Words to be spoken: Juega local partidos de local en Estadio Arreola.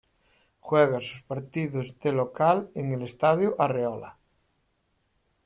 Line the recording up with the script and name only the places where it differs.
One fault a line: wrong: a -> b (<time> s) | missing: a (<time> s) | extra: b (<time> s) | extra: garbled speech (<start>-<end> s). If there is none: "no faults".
wrong: local -> sus (1.0 s)
extra: el (2.9 s)